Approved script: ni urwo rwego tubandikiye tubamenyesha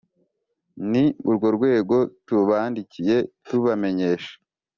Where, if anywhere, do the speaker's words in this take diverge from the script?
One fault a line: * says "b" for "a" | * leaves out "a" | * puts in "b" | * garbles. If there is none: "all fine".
all fine